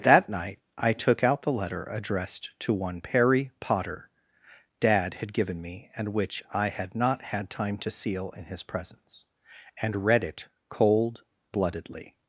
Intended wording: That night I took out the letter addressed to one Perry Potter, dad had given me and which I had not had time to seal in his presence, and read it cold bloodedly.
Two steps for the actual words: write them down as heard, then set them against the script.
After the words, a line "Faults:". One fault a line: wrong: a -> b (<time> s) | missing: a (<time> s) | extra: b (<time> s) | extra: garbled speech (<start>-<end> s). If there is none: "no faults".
That night I took out the letter addressed to one Perry Potter, dad had given me and which I had not had time to seal in his presence, and read it cold bloodedly.
Faults:
no faults